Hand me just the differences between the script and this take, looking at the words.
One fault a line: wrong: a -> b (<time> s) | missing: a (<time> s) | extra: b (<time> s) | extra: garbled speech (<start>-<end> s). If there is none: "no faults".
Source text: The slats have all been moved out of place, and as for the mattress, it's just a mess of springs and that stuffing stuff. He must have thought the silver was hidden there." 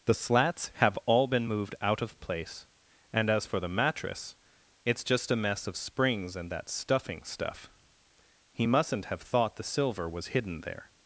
wrong: must -> mustn't (8.6 s)